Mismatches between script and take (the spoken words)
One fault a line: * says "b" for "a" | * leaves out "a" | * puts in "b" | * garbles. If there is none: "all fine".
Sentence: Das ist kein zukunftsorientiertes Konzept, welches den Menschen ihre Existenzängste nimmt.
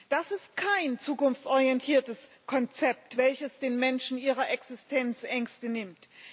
all fine